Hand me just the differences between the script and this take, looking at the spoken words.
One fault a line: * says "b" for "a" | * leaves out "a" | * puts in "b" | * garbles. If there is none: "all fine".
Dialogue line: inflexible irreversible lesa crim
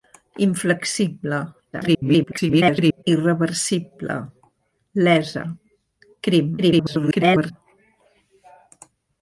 * garbles
* garbles